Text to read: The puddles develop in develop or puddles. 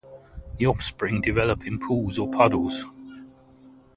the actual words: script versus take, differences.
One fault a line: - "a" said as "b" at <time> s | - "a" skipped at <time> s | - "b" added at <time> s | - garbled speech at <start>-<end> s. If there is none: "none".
- "puddles" said as "offspring" at 0.7 s
- "develop" said as "pools" at 1.8 s